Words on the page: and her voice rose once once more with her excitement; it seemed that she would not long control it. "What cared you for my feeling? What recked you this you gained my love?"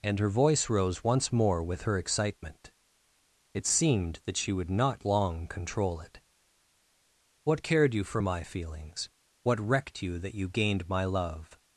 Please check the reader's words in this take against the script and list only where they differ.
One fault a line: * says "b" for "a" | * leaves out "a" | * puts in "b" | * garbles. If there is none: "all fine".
* leaves out "once"
* says "feelings" for "feeling"
* says "that" for "this"